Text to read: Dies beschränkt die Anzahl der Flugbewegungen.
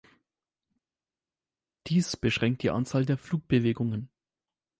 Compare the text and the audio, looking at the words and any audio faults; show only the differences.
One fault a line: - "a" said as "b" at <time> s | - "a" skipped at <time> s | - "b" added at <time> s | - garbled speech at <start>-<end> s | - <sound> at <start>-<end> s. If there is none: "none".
none